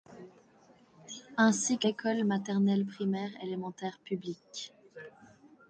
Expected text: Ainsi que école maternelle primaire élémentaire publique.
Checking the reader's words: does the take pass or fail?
pass